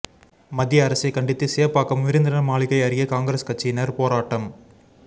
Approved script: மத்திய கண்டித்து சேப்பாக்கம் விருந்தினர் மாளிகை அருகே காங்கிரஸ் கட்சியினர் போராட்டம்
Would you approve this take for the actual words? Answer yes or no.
no